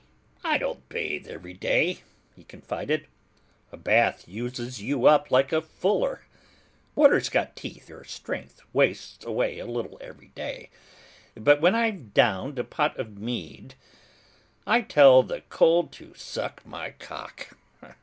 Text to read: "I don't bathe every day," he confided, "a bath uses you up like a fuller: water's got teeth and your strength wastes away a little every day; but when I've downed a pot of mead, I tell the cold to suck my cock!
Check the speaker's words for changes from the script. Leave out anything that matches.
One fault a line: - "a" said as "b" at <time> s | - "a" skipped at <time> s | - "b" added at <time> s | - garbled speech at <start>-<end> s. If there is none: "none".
- "and" skipped at 7.9 s